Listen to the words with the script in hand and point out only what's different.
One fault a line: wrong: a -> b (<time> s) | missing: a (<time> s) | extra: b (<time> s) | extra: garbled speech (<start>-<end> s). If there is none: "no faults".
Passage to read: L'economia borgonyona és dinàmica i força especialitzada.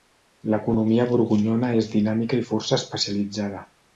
no faults